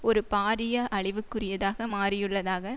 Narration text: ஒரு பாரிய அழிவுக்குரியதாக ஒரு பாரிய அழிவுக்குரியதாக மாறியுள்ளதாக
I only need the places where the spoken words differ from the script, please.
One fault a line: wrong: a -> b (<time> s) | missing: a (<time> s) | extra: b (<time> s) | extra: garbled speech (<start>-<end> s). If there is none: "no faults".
missing: ஒரு பாரிய அழிவுக்குரியதாக (1.9 s)